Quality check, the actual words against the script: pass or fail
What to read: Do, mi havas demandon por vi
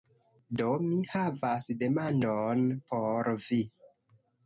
pass